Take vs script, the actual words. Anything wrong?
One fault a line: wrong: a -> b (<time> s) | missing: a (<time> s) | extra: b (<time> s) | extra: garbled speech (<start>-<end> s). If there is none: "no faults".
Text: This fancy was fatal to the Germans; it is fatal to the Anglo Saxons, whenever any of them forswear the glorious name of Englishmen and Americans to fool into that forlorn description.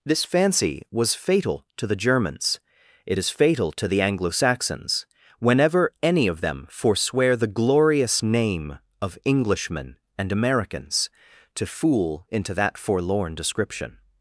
no faults